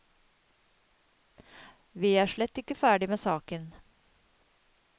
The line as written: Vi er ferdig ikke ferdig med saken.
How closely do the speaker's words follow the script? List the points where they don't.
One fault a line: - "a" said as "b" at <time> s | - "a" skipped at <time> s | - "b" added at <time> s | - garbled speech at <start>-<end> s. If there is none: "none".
- "ferdig" said as "slett" at 2.3 s